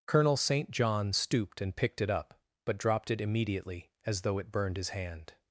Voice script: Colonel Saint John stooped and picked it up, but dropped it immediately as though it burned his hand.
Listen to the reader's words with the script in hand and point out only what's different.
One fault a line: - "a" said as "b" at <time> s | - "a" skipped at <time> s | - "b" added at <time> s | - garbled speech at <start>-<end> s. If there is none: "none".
none